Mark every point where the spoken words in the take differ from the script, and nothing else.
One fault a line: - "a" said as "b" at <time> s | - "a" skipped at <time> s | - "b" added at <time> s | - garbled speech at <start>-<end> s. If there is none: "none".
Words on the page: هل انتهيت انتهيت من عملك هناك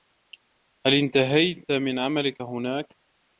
- "انتهيت" skipped at 1.7 s